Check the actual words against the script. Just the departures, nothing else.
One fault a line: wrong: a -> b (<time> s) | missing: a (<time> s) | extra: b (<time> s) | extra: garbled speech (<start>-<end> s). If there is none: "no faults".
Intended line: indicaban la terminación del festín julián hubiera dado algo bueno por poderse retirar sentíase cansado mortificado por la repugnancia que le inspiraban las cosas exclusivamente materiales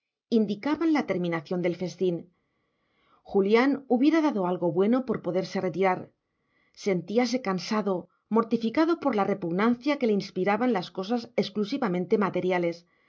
no faults